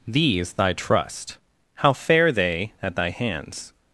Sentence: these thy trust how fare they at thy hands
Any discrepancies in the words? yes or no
no